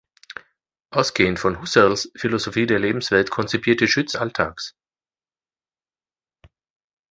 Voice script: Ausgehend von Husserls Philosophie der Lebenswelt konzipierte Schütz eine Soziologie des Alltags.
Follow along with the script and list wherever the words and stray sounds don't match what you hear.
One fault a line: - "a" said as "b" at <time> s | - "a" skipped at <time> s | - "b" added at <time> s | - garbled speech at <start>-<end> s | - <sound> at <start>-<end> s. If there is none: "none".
- "eine Soziologie des" skipped at 4.2 s